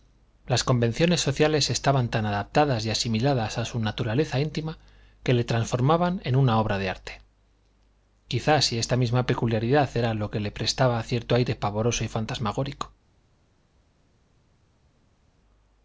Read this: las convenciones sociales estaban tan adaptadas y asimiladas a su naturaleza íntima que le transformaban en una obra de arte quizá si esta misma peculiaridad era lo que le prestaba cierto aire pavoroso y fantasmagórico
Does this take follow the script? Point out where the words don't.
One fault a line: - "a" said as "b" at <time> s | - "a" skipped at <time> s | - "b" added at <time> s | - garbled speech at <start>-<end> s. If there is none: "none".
none